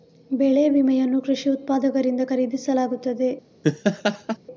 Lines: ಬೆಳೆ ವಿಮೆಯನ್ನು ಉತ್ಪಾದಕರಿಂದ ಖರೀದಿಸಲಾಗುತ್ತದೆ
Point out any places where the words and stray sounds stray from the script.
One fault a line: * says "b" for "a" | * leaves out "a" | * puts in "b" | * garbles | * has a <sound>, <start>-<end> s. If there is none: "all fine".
* puts in "ಕೃಷಿ"
* has a laugh, 3.6-4.4 s